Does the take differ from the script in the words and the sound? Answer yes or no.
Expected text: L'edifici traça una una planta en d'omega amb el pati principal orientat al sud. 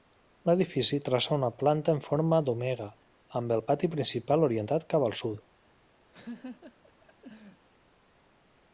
yes